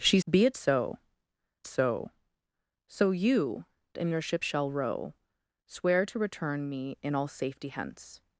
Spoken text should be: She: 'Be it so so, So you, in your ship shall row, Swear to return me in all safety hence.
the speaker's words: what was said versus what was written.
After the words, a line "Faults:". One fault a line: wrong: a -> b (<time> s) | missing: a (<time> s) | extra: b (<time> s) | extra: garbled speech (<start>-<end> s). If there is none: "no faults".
She: 'Be it so so, So you, in your ship shall row, Swear to return me in all safety hence.
Faults:
no faults